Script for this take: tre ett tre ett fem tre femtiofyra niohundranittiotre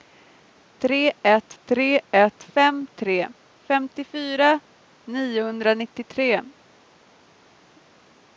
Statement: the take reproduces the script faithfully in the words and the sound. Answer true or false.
true